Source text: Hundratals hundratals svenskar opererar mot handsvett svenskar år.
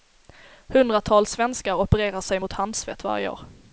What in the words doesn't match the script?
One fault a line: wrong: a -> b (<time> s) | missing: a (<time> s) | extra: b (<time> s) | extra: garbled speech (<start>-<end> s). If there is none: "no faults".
missing: hundratals (1.3 s)
extra: sig (2.2 s)
wrong: svenskar -> varje (3.0 s)